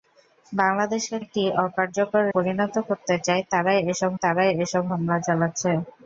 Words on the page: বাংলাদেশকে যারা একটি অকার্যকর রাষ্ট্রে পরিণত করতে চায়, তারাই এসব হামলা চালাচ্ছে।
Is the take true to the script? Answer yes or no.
no